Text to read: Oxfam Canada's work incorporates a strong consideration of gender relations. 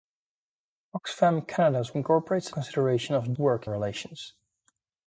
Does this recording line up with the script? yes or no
no